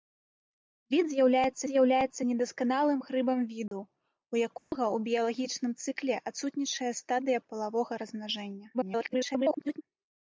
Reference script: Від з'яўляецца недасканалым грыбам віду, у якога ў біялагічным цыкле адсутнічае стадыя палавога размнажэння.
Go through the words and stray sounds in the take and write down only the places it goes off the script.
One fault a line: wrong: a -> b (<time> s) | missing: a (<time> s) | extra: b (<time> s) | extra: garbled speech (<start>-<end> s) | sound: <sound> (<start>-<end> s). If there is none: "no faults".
extra: з'яўляецца (1.7 s)
sound: dropout (3.7-3.7 s)
sound: dropout (4.6-4.7 s)
extra: garbled speech (8.7-9.8 s)